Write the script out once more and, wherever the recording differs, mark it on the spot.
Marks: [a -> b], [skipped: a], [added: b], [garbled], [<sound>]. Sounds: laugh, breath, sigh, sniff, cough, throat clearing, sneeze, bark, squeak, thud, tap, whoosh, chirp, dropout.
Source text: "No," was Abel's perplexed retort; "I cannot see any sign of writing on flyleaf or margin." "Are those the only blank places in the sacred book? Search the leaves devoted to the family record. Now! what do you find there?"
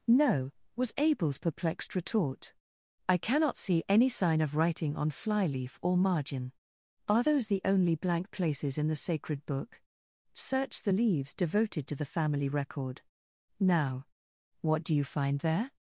"No," was Abel's perplexed retort; "I cannot see any sign of writing on flyleaf or margin." "Are those the only blank places in the sacred book? Search the leaves devoted to the family record. Now! what do you find there?"